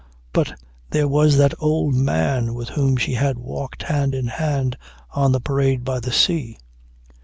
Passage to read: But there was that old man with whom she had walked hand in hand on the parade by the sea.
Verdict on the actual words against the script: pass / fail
pass